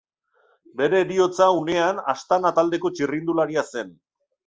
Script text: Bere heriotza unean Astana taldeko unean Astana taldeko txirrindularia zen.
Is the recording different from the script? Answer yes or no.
yes